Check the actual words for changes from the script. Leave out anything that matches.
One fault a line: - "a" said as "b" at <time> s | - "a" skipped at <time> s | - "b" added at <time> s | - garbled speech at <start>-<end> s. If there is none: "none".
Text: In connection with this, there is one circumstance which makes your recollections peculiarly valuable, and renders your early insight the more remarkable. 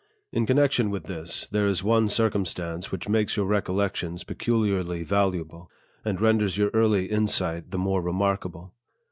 none